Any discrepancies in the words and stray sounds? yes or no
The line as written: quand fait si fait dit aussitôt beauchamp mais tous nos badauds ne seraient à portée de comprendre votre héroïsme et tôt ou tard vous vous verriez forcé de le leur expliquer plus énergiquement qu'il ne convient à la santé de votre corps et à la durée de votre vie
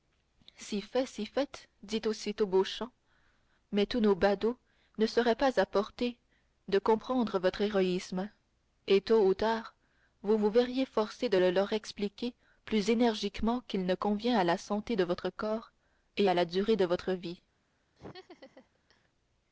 yes